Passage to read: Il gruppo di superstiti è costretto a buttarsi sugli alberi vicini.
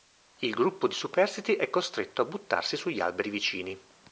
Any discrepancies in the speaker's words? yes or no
no